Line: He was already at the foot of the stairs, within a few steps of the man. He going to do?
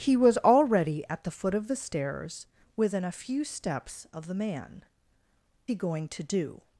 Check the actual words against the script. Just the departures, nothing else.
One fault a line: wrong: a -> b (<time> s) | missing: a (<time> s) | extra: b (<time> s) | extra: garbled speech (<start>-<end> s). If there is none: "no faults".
no faults